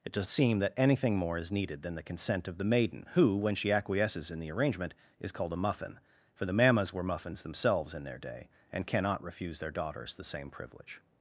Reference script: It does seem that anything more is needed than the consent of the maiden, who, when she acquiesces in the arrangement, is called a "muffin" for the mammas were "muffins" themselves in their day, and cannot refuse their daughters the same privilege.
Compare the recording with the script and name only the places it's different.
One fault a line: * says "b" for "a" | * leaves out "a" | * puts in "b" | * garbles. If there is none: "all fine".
all fine